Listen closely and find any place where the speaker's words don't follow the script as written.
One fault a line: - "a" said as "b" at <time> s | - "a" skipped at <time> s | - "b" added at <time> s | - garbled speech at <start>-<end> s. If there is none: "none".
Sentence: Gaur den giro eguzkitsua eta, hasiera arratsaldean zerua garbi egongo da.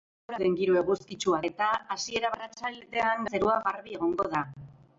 none